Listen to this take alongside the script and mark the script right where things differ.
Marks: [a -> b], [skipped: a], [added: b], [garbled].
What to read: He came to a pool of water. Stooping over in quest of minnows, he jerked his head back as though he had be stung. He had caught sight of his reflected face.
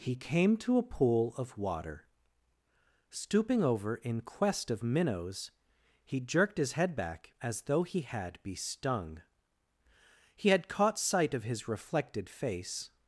He came to a pool of water. Stooping over in quest of minnows, he jerked his head back as though he had be stung. He had caught sight of his reflected face.